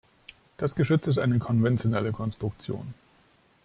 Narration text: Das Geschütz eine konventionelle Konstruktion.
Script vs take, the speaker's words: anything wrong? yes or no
yes